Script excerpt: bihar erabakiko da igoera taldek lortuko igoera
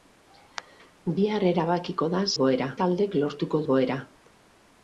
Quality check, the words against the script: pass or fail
pass